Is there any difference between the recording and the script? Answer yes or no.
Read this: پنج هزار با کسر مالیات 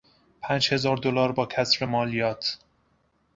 yes